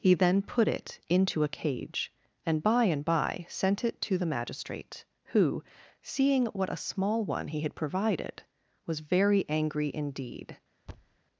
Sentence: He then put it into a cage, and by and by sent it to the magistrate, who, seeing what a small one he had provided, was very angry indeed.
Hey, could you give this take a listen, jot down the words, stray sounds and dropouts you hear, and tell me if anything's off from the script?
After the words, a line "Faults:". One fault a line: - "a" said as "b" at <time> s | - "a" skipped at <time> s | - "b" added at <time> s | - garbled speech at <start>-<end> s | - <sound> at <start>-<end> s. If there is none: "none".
He then put it into a cage, and by and by sent it to the magistrate, who, seeing what a small one he had provided, was very angry indeed.
Faults:
- thud at 10.9-11.2 s